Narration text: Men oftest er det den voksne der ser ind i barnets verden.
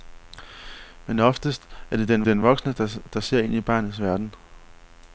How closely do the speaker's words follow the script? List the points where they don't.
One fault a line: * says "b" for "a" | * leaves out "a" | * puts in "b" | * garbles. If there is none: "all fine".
* puts in "den"